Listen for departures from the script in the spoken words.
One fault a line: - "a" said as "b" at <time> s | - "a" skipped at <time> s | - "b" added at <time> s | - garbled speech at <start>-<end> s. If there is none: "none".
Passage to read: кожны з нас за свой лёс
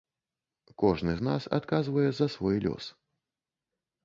- "адказвае" added at 1.6 s